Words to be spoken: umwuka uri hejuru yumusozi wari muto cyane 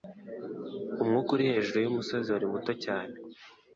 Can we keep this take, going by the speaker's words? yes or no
yes